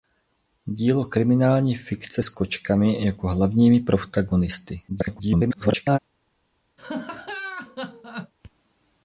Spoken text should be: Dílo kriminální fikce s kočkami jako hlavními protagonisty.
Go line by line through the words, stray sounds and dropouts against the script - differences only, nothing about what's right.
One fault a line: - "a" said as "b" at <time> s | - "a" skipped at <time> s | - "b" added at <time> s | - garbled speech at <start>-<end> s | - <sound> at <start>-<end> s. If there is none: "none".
- garbled speech at 4.9-6.0 s
- laugh at 6.8-8.3 s